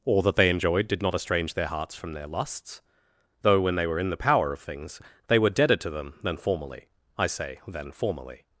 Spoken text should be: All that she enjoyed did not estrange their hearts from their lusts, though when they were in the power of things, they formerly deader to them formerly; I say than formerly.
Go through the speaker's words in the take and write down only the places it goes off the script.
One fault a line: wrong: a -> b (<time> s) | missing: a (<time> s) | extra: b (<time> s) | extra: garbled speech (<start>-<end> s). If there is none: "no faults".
wrong: she -> they (0.3 s)
wrong: formerly -> were (5.4 s)
extra: than (6.2 s)